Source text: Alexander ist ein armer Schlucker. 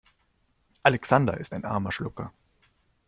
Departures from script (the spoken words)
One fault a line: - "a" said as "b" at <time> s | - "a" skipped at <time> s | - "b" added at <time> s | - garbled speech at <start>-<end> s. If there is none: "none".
none